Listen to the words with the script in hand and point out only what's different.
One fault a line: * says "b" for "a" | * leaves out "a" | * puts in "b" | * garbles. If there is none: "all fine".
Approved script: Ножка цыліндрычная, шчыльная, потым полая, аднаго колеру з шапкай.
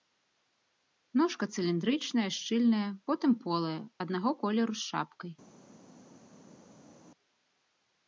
all fine